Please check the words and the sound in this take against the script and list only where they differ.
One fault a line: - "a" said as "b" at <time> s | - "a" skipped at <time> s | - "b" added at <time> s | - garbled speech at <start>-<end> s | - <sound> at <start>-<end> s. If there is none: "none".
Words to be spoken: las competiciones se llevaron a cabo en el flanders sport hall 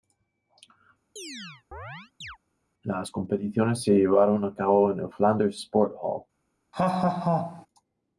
- chirp at 1.2-2.4 s
- laugh at 6.7-7.7 s